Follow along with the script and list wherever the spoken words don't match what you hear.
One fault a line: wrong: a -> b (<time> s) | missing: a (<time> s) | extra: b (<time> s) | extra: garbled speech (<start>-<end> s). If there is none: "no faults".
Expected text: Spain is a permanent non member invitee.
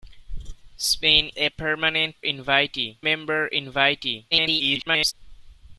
missing: is (1.3 s)
wrong: non -> invitee (2.2 s)
extra: garbled speech (4.3-5.1 s)